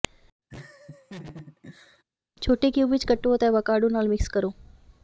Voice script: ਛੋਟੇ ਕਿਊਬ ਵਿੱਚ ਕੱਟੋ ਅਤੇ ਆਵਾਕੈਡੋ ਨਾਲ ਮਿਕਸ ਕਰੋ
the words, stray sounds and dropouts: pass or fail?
fail